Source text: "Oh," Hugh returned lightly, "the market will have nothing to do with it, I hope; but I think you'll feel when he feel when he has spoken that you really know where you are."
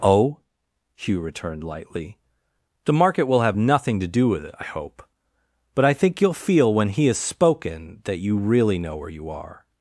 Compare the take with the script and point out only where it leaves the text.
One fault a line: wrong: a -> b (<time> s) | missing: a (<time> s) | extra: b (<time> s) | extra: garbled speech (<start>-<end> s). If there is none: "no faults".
missing: feel when he (7.1 s)